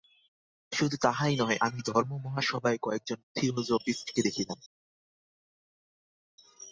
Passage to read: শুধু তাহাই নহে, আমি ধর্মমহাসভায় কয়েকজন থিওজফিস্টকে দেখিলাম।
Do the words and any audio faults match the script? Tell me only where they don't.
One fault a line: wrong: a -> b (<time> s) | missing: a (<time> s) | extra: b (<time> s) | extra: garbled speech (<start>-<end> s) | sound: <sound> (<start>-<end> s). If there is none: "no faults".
no faults